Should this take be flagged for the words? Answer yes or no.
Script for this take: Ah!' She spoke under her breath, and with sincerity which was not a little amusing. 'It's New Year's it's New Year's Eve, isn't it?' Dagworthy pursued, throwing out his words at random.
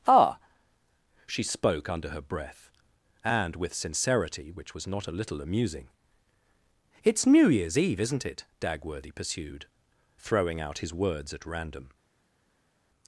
yes